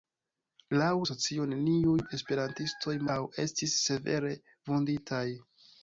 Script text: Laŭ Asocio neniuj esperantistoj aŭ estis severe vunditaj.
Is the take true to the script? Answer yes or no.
yes